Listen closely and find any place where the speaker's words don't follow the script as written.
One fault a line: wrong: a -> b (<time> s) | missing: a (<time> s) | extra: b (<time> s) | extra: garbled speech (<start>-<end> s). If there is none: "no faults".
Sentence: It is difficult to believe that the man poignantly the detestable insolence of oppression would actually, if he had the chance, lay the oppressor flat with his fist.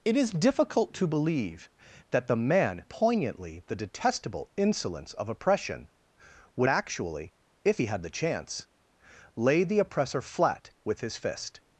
no faults